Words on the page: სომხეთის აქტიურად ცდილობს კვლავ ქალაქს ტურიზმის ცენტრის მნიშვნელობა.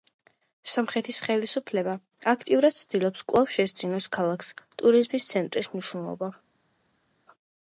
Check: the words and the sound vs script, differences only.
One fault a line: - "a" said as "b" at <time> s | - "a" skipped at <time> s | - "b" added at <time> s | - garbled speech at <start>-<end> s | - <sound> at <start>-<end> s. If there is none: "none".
- "ხელისუფლება" added at 1.2 s
- "შესძინოს" added at 3.6 s